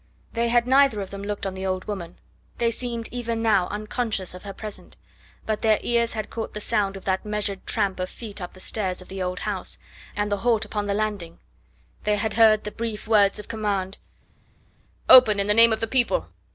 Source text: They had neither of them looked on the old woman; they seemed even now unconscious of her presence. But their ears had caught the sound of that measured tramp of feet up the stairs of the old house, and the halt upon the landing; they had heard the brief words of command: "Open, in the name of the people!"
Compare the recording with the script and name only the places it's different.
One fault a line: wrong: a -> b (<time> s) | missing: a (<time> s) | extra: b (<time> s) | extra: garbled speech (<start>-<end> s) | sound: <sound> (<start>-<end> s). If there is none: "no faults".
no faults